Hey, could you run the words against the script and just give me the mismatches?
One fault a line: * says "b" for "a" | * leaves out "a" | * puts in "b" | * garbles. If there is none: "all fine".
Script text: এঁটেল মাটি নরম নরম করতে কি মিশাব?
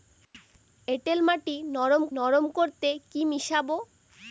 all fine